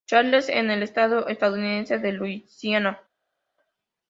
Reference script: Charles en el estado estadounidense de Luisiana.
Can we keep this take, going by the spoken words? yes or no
yes